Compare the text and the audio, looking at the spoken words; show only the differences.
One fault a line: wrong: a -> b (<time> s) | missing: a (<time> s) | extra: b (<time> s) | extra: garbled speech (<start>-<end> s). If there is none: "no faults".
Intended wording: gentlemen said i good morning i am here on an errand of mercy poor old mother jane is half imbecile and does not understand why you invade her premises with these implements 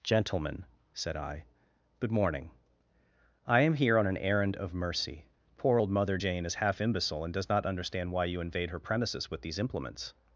no faults